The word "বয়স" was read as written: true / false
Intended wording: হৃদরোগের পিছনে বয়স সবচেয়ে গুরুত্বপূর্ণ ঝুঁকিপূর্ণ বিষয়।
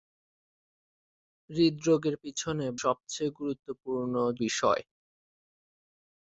false